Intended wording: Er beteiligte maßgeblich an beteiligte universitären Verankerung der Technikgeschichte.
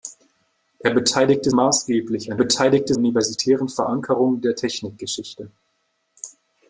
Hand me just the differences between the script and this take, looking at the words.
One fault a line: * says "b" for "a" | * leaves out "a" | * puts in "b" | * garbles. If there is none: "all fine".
all fine